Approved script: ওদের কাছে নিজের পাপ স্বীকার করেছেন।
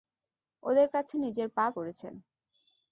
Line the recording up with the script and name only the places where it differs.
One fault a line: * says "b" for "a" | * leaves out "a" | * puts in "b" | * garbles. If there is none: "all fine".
* leaves out "স্বীকার"